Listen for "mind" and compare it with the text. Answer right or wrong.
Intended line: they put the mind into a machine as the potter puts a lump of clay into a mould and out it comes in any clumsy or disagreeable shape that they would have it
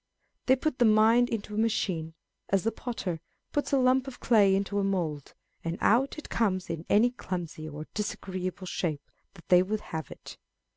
right